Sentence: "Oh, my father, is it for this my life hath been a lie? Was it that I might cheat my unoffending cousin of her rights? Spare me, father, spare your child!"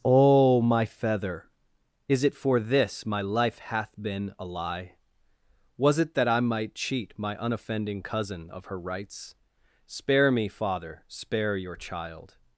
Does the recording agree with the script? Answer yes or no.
no